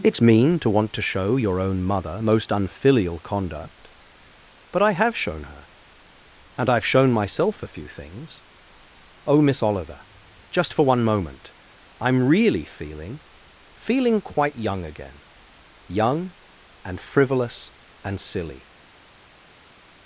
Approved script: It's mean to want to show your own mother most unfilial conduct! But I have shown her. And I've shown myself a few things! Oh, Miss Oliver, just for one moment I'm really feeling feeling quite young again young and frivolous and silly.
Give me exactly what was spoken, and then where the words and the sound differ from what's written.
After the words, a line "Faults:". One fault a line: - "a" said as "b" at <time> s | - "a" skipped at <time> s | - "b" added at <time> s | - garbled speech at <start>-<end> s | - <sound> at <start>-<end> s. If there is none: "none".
It's mean to want to show your own mother most unfilial conduct! But I have shown her. And I've shown myself a few things! Oh, Miss Oliver, just for one moment I'm really feeling feeling quite young again young and frivolous and silly.
Faults:
none